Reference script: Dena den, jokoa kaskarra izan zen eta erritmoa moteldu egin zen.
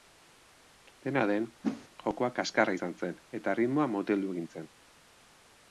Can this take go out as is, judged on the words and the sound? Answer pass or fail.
fail